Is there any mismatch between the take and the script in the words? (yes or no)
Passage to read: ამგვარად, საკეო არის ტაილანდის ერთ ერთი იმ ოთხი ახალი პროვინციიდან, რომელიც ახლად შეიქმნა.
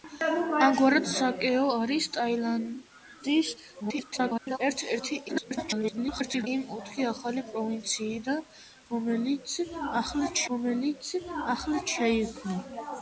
yes